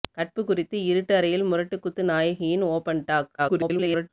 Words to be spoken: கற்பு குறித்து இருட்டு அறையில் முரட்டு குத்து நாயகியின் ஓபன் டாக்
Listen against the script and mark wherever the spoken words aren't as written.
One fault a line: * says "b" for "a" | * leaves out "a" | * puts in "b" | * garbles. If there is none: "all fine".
* garbles